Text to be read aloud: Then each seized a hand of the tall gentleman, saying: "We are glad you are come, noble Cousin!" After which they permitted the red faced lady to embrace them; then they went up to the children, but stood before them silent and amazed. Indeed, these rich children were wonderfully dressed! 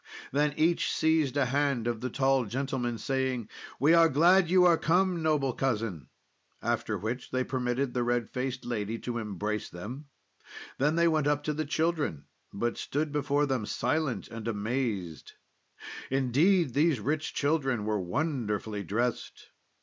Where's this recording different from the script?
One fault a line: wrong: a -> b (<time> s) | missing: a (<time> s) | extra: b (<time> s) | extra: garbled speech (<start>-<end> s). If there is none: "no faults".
no faults